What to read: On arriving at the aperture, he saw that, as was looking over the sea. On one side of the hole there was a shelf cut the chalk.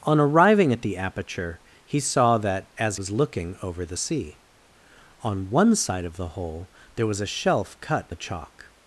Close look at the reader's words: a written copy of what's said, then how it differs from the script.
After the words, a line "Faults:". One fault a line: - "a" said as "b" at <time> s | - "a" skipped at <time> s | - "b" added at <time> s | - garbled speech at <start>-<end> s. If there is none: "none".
On arriving at the aperture, he saw that, as was looking over the sea. On one side of the hole there was a shelf cut the chalk.
Faults:
none